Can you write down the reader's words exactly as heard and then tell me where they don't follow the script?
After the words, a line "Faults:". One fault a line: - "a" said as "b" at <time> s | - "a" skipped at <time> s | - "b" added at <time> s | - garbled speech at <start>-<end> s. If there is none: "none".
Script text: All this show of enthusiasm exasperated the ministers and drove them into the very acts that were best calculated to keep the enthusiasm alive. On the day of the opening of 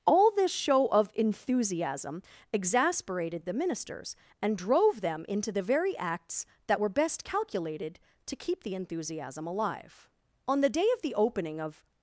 All this show of enthusiasm exasperated the ministers and drove them into the very acts that were best calculated to keep the enthusiasm alive. On the day of the opening of
Faults:
none